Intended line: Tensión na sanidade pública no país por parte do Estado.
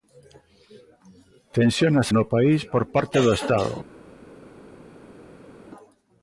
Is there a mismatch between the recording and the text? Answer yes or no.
yes